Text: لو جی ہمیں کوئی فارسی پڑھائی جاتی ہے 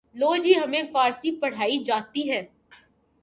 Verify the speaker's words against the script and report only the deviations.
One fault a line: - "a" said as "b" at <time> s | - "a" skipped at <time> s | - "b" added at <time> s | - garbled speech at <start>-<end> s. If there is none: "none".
- "کوئی" skipped at 0.8 s